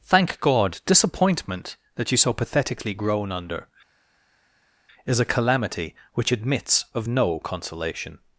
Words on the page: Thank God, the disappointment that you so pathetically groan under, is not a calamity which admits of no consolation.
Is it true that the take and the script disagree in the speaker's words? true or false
true